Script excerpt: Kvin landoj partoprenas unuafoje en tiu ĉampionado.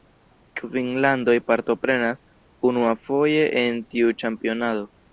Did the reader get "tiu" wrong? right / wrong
right